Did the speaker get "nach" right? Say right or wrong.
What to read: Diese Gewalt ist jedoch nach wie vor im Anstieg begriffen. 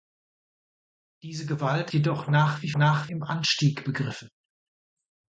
right